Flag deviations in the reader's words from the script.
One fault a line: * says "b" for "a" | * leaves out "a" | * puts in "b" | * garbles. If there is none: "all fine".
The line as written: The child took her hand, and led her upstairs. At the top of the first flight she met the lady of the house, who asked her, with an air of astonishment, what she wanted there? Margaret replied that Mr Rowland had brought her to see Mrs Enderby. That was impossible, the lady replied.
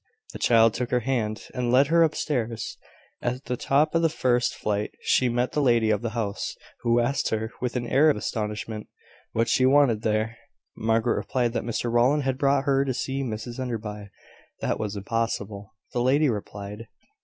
all fine